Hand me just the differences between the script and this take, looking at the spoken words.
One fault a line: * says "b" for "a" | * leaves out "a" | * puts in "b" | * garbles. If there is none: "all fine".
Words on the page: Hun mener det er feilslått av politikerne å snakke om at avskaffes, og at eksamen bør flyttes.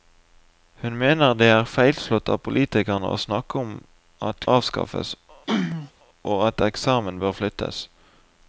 all fine